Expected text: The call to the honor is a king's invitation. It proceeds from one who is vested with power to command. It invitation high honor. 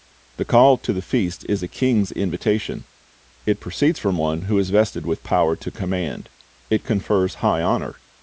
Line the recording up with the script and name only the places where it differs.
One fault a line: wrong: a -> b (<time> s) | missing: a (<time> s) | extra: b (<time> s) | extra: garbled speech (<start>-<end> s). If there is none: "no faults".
wrong: honor -> feast (1.0 s)
wrong: invitation -> confers (6.8 s)